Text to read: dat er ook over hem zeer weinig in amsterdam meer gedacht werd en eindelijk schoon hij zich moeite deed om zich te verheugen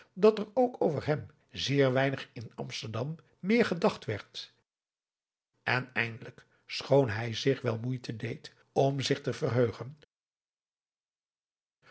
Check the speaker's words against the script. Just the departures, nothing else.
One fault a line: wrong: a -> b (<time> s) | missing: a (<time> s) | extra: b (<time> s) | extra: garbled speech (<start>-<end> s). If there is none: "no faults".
extra: wel (7.6 s)